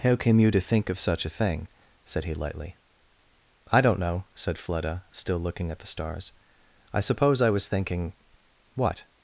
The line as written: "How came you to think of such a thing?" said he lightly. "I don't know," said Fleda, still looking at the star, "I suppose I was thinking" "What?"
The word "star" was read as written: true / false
false